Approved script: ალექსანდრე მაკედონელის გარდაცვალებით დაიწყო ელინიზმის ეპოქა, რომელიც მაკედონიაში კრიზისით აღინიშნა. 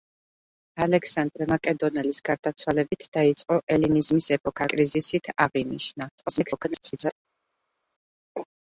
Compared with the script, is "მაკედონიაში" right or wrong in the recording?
wrong